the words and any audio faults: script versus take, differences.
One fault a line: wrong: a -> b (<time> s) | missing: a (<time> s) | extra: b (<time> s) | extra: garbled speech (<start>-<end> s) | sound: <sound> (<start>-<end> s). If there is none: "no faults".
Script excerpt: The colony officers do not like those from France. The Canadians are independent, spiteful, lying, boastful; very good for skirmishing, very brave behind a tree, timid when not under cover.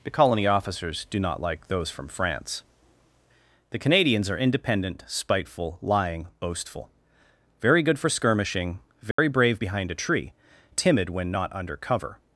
sound: dropout (9.1-9.2 s)